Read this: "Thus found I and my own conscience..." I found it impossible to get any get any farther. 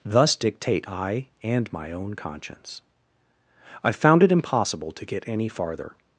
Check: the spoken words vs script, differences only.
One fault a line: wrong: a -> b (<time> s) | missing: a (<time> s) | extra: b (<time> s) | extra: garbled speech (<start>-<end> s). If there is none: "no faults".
wrong: found -> dictate (0.3 s)
missing: get any (5.5 s)